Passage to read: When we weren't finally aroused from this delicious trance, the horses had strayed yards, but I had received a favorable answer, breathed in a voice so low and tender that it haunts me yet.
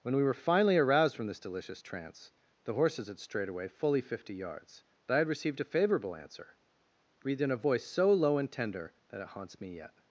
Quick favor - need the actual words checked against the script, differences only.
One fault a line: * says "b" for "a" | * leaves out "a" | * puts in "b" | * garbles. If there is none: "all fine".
* says "were" for "weren't"
* puts in "away fully fifty"